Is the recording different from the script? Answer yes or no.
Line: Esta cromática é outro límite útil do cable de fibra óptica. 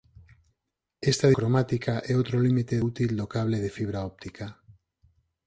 no